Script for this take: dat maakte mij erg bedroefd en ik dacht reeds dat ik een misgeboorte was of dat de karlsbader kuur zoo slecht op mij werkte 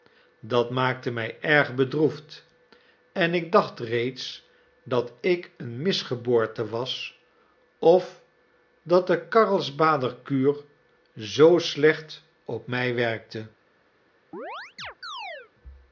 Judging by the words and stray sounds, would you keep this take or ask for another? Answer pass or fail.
fail